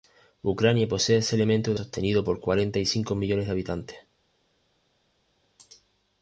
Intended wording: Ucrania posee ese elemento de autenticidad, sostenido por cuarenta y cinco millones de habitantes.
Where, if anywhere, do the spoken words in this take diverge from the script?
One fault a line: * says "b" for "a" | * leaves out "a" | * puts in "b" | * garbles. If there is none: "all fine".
* leaves out "autenticidad"